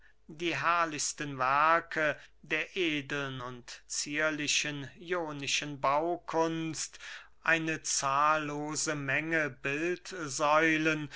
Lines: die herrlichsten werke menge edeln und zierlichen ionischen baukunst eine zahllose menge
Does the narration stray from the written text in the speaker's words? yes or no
yes